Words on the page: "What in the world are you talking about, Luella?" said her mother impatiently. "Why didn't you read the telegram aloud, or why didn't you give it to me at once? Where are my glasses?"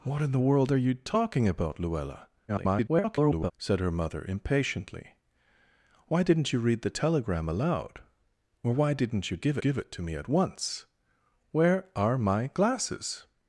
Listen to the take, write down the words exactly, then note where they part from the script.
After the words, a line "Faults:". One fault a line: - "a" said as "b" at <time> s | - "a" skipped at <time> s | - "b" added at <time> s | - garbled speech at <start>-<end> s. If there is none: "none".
"What in the world are you talking about, Luella?" [garbled] said her mother impatiently. "Why didn't you read the telegram aloud, or why didn't you give give it to me at once? Where are my glasses?"
Faults:
- garbled speech at 2.5-3.5 s
- "give" added at 9.6 s